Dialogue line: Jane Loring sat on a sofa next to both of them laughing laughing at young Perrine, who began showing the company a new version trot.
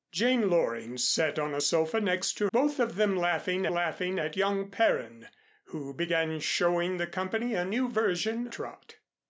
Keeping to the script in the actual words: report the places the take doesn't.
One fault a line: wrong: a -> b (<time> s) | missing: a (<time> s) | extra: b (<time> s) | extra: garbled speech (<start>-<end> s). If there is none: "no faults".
no faults